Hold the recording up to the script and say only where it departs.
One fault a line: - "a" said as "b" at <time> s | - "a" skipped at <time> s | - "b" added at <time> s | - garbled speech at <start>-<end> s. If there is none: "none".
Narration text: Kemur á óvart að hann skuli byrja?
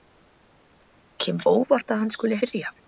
none